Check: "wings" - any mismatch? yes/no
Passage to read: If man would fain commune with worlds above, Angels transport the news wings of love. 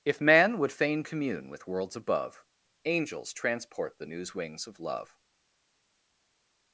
no